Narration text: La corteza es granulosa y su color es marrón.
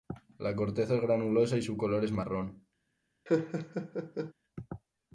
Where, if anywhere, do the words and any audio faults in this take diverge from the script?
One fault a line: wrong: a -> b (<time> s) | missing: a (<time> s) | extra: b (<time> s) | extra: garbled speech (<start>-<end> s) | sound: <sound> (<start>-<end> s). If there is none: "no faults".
sound: laugh (3.3-4.3 s)